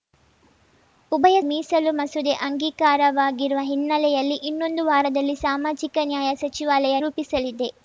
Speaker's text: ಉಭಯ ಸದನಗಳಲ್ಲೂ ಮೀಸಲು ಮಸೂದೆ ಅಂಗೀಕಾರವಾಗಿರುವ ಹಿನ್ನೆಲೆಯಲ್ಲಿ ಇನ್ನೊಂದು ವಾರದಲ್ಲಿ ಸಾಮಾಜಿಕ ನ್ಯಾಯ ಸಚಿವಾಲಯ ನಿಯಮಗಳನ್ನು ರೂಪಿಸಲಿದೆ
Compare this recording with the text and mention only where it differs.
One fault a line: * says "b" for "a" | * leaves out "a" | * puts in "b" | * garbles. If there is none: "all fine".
* leaves out "ಸದನಗಳಲ್ಲೂ"
* leaves out "ನಿಯಮಗಳನ್ನು"